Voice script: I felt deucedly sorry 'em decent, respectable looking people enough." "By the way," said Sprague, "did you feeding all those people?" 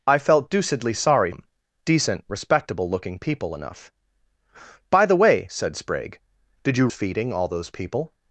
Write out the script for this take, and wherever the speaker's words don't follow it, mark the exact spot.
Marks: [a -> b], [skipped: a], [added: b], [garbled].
I felt deucedly sorry 'em decent, respectable looking people enough." "By the way," said Sprague, "did you feeding all those people?"